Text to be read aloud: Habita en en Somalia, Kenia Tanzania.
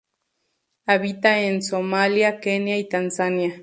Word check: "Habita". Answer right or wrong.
right